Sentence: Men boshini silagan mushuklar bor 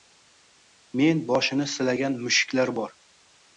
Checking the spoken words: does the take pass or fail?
pass